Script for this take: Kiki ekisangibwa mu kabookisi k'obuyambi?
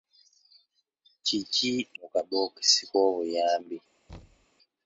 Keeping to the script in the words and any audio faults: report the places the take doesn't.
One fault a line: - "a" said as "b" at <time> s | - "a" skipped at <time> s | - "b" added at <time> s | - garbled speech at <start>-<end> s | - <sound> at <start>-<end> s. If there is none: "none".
- "ekisangibwa" skipped at 1.7 s
- thud at 4.1-4.5 s